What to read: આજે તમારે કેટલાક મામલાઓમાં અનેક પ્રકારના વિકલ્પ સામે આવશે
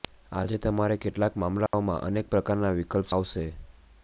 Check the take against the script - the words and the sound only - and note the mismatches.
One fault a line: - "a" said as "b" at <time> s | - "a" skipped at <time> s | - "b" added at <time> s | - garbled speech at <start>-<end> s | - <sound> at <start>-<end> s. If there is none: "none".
- dropout at 1.7-1.7 s
- "સામે" skipped at 3.1 s